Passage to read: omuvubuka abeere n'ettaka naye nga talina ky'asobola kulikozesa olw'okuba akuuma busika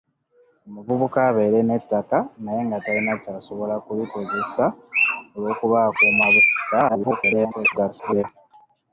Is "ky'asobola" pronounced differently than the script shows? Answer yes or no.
no